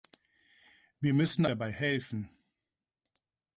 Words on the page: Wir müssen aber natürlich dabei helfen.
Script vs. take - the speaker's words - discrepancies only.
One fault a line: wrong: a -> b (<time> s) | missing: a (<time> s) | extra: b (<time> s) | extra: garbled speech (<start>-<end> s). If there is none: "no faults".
missing: aber natürlich (1.4 s)